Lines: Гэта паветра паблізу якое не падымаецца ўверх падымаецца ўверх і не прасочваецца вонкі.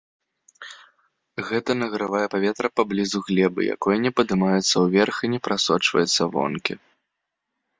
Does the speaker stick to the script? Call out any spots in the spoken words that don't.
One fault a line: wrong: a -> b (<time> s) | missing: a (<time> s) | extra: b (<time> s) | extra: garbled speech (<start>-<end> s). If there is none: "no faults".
extra: награвае (1.8 s)
extra: глебы (3.3 s)
missing: падымаецца ўверх (5.2 s)